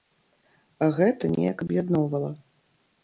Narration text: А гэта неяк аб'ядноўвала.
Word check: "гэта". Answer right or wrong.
right